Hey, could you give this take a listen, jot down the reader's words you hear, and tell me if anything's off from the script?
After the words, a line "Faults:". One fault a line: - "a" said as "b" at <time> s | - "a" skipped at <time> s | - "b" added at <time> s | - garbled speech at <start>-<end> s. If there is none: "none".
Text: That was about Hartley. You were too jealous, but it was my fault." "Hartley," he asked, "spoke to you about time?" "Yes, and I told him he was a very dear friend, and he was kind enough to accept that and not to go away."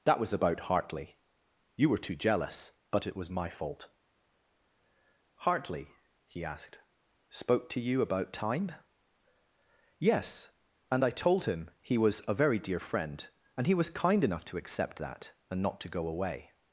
That was about Hartley. You were too jealous, but it was my fault." "Hartley," he asked, "spoke to you about time?" "Yes, and I told him he was a very dear friend, and he was kind enough to accept that and not to go away."
Faults:
none